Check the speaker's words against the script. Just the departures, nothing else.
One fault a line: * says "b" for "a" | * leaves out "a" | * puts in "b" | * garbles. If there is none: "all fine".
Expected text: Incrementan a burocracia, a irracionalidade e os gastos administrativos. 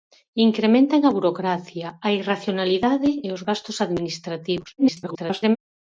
* garbles